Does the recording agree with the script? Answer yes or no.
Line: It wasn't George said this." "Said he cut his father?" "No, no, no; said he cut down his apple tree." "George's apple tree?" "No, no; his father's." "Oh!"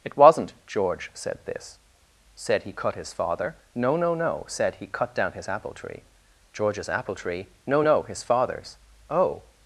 yes